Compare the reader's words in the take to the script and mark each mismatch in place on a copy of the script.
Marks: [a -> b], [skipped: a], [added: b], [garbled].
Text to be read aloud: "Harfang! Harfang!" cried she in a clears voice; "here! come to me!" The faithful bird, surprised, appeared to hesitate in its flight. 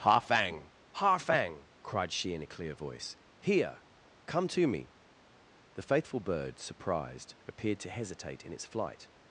"Harfang! Harfang!" cried she in a [clears -> clear] voice; "here! come to me!" The faithful bird, surprised, appeared to hesitate in its flight.